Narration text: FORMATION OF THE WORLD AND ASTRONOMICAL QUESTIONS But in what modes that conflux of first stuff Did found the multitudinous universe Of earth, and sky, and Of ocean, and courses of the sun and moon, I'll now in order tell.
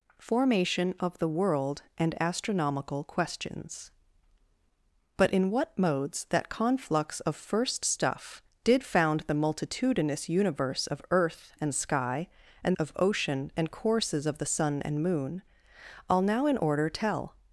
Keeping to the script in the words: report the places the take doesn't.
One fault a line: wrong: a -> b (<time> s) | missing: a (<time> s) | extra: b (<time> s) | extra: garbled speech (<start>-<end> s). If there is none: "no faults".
no faults